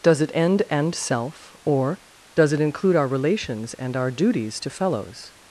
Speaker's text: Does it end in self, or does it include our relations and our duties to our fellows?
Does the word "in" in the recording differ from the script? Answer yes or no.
yes